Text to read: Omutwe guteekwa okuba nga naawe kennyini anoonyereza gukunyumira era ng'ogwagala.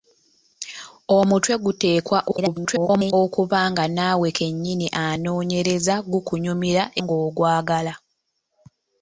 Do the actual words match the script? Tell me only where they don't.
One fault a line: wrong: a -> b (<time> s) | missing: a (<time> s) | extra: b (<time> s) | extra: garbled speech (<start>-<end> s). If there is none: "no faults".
extra: garbled speech (2.3-3.1 s)
missing: era (6.8 s)